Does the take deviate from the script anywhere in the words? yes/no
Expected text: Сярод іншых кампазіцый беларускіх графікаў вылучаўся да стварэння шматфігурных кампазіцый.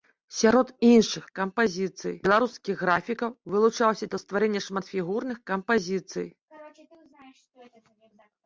no